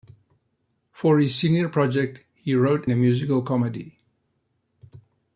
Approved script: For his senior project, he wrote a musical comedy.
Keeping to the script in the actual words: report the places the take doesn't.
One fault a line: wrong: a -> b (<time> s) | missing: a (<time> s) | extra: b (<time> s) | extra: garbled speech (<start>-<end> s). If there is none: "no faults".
no faults